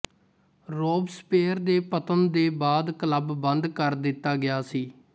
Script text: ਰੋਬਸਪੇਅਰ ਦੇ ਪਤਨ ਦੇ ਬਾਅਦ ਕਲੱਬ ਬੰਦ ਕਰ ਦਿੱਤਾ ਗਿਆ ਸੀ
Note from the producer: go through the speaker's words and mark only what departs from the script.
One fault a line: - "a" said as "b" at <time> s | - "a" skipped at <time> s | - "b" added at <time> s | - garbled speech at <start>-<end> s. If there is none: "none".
none